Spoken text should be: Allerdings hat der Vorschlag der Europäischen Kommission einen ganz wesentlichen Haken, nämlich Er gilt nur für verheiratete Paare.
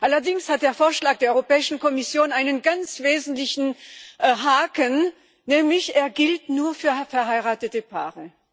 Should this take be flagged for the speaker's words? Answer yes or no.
no